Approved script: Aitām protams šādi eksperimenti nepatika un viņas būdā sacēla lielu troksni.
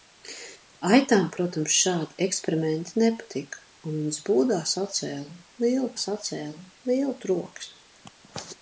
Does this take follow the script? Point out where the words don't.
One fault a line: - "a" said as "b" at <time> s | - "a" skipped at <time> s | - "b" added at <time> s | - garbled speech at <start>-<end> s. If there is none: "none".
- "sacēla lielu" added at 6.0 s